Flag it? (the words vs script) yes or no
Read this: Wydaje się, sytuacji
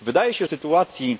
no